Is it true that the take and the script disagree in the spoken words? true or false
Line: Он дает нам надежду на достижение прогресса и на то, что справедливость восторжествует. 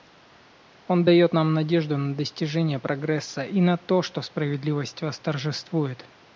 false